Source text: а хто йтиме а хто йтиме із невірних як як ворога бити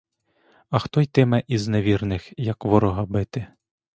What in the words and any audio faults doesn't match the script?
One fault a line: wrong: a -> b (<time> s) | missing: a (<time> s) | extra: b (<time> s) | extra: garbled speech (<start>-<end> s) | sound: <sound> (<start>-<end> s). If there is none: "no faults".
missing: а хто йтиме (1.4 s)
missing: як (2.6 s)